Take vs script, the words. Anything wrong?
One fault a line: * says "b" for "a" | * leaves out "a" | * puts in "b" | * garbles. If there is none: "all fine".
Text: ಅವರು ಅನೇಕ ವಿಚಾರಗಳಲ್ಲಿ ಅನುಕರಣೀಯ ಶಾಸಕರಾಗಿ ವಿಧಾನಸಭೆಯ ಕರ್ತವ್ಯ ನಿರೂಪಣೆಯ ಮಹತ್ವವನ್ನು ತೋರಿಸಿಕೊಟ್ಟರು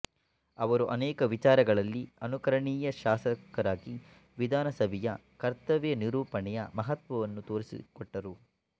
all fine